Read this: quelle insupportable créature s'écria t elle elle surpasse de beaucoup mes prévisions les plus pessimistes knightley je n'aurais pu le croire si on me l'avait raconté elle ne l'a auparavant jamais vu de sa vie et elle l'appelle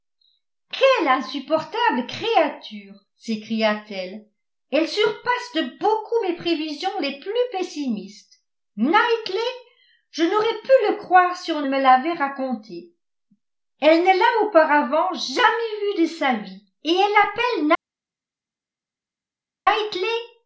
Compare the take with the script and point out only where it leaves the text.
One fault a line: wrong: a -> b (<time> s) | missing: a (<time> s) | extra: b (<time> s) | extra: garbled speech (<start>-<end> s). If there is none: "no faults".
no faults